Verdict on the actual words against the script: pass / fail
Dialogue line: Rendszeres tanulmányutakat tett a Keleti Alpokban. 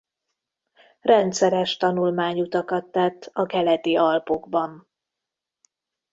pass